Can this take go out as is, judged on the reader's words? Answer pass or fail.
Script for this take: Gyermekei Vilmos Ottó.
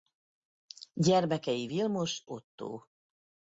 pass